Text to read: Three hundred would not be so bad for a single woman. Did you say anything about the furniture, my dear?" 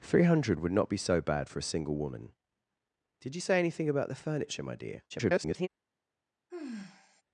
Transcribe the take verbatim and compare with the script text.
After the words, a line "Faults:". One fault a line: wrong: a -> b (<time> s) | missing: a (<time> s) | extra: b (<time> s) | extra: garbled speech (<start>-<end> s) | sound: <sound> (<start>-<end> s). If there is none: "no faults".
Three hundred would not be so bad for a single woman. Did you say anything about the furniture, my dear?" [garbled]
Faults:
extra: garbled speech (5.1-5.7 s)
sound: sigh (6.5-7.2 s)